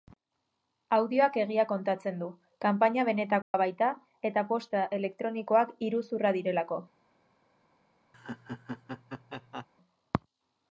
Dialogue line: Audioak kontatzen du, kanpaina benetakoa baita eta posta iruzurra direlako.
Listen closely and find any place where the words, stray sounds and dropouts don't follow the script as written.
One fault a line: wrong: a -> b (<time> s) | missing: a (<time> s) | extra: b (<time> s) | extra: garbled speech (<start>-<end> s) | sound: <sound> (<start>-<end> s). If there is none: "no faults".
extra: egia (1.4 s)
sound: dropout (3.4-3.5 s)
extra: elektronikoak (5.0 s)
sound: laugh (8.1-9.7 s)